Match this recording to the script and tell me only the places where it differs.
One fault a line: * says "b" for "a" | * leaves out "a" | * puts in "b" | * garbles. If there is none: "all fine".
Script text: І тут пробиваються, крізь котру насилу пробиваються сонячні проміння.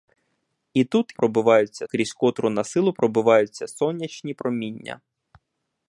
all fine